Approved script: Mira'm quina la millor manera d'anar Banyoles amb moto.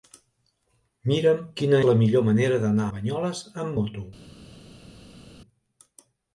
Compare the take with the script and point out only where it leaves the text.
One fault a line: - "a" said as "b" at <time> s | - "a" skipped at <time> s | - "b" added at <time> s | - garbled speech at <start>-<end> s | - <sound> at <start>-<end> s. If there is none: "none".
none